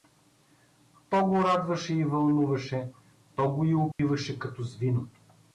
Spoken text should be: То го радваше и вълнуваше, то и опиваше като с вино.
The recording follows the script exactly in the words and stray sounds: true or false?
false